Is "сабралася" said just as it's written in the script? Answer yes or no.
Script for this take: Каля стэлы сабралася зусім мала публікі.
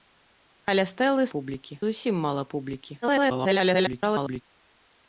no